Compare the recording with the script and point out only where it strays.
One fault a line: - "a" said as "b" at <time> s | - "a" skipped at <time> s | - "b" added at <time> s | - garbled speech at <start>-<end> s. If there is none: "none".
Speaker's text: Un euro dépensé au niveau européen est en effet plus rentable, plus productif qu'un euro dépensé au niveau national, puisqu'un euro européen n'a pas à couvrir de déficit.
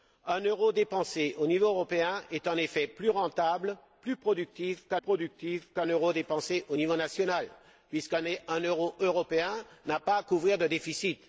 - "productif qu'un" added at 5.0 s